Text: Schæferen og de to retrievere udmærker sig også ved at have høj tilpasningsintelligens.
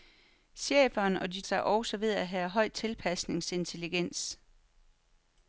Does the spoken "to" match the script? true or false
false